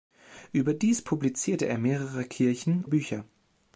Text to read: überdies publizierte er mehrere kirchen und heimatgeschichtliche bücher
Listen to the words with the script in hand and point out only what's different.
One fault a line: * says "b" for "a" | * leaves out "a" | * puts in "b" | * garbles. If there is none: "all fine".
* leaves out "und heimatgeschichtliche"